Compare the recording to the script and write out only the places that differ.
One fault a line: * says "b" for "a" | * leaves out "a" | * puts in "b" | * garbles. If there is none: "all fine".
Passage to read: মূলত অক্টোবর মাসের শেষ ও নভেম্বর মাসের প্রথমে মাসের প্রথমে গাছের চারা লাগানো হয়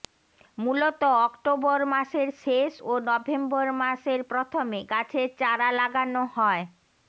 * leaves out "মাসের প্রথমে"